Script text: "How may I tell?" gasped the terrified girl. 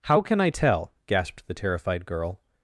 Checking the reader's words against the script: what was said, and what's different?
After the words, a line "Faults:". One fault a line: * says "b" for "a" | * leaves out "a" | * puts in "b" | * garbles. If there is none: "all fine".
"How can I tell?" gasped the terrified girl.
Faults:
* says "can" for "may"